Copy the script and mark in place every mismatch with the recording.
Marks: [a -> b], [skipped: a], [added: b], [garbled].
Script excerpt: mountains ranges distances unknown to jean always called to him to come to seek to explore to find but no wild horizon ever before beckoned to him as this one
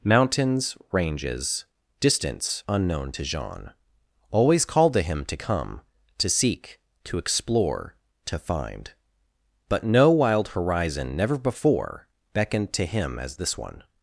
mountains ranges [distances -> distance] unknown to jean always called to him to come to seek to explore to find but no wild horizon [ever -> never] before beckoned to him as this one